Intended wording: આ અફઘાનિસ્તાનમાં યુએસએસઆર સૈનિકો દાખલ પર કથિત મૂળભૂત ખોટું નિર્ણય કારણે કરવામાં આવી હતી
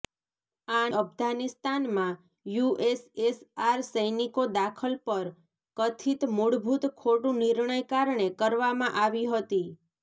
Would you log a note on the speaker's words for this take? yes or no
no